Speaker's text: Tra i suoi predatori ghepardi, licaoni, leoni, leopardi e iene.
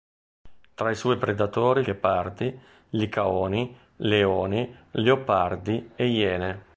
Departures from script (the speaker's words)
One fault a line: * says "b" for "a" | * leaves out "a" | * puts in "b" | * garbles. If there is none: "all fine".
all fine